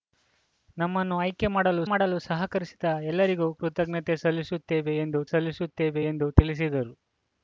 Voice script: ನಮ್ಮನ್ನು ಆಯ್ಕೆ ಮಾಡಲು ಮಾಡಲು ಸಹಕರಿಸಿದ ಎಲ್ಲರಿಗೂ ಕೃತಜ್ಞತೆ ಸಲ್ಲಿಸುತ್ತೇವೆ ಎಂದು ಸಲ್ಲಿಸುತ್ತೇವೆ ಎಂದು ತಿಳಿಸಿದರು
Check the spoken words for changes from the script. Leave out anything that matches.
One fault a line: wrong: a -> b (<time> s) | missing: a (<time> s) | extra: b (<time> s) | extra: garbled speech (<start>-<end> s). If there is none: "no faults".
no faults